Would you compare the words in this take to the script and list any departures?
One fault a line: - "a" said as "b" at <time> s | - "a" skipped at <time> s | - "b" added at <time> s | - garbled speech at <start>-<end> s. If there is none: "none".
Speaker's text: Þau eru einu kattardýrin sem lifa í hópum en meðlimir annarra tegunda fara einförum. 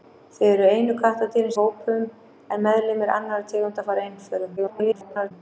- "sem lifa" skipped at 1.5 s
- garbled speech at 4.6-5.3 s